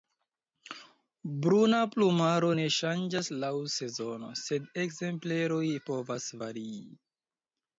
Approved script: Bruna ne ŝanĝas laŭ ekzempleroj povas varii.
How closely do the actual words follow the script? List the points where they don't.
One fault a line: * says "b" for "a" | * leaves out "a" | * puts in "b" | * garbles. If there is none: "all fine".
* puts in "plumaro"
* puts in "sezono sed"